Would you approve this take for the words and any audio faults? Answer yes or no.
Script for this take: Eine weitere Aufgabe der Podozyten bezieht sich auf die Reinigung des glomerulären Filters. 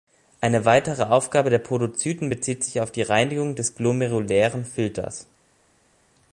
yes